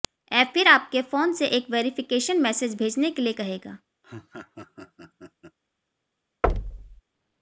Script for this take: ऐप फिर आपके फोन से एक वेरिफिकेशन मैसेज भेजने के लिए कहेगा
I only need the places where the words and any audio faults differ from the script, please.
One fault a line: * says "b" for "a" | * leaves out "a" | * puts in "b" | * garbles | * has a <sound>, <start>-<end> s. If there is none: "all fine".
* has a laugh, 4.0-5.6 s
* has a thud, 6.4-7.0 s